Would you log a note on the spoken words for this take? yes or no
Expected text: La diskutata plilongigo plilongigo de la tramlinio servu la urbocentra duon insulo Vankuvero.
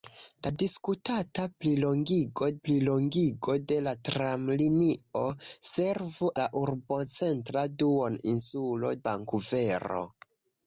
no